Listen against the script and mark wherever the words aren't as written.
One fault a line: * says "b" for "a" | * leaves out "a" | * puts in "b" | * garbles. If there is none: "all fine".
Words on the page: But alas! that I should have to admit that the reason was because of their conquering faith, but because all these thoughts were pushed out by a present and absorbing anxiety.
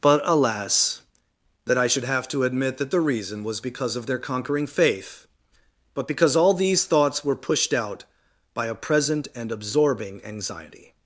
all fine